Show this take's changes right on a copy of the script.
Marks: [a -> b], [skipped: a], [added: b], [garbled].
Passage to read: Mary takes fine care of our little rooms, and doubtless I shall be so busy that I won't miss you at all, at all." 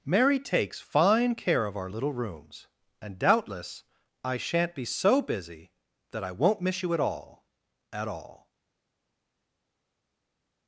Mary takes fine care of our little rooms, and doubtless I [shall -> shan't] be so busy that I won't miss you at all, at all."